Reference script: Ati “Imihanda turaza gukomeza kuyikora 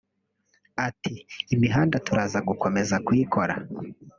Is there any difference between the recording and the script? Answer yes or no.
no